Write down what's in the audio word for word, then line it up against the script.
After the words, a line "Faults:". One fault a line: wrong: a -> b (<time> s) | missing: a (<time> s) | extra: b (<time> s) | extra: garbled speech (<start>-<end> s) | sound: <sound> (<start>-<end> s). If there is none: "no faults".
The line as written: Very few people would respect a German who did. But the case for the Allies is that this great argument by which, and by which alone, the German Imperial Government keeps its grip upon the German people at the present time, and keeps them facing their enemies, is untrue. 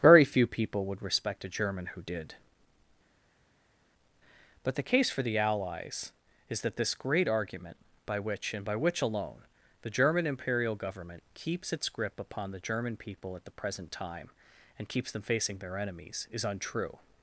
Very few people would respect a German who did. But the case for the Allies is that this great argument by which, and by which alone, the German Imperial Government keeps its grip upon the German people at the present time, and keeps them facing their enemies, is untrue.
Faults:
no faults